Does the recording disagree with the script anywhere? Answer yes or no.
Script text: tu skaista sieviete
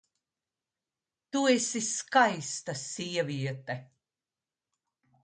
yes